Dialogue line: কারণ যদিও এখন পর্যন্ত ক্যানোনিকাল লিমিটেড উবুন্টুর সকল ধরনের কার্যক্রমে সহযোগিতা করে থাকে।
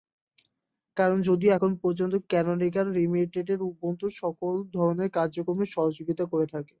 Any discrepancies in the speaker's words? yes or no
no